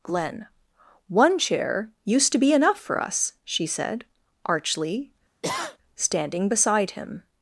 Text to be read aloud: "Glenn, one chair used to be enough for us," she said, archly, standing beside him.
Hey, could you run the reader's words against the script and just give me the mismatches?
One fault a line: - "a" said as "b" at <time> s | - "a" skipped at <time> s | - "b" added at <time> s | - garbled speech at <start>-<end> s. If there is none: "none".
none